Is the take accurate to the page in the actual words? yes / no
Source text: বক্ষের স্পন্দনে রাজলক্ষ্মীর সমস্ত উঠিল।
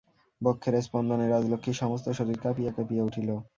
no